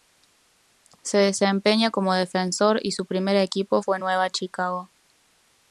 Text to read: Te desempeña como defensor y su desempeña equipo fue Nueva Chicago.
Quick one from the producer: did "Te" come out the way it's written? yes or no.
no